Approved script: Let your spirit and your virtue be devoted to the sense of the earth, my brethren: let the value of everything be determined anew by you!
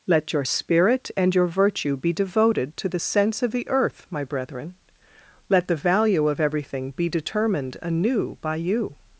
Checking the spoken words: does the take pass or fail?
pass